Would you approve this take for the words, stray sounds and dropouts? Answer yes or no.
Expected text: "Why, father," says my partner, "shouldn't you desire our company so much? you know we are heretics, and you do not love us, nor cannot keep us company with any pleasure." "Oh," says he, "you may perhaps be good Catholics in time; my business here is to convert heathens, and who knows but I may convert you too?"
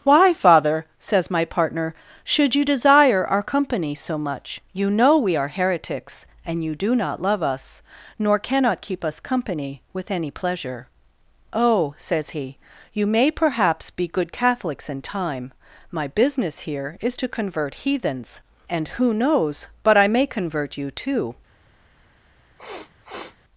no